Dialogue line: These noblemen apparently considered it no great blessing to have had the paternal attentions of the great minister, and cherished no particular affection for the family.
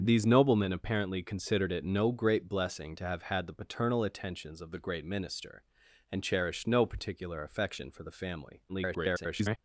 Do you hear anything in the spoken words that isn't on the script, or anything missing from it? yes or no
yes